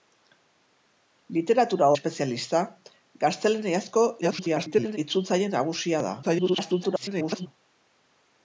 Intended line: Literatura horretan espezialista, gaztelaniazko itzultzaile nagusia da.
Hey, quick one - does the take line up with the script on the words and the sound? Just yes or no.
no